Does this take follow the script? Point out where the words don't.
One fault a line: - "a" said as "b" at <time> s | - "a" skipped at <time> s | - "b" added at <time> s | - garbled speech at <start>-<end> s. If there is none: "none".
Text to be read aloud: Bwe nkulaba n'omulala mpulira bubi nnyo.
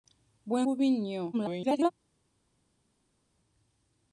- "nkulaba n'omulala mpulira" skipped at 0.6 s
- garbled speech at 1.3-1.9 s